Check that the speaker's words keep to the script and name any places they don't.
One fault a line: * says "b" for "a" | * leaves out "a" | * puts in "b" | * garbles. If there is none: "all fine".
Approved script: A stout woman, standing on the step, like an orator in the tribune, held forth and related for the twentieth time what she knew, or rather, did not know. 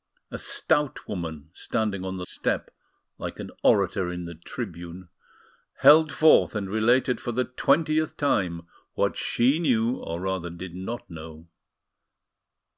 all fine